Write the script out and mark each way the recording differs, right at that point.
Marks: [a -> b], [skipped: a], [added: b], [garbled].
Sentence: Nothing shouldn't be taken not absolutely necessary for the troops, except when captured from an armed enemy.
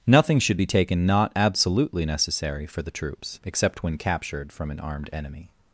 Nothing [shouldn't -> should] be taken not absolutely necessary for the troops, except when captured from an armed enemy.